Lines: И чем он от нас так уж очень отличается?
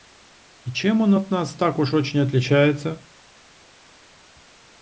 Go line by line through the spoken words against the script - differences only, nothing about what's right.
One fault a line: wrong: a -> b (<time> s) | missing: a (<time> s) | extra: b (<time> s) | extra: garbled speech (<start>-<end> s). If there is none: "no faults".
no faults